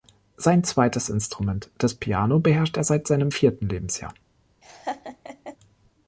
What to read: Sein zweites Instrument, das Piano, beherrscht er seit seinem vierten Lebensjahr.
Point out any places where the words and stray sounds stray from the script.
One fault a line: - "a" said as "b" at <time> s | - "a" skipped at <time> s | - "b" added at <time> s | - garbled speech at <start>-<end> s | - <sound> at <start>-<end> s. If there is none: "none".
- laugh at 4.6-5.6 s